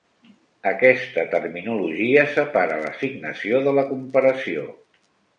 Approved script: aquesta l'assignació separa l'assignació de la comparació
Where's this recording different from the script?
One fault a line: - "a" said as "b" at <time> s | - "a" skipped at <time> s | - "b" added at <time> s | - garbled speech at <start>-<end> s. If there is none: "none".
- "l'assignació" said as "terminologia" at 1.3 s